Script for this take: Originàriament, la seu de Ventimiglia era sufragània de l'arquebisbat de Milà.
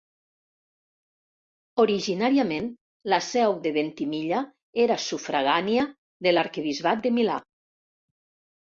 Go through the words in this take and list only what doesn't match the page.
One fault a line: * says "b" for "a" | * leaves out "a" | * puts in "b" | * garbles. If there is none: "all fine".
all fine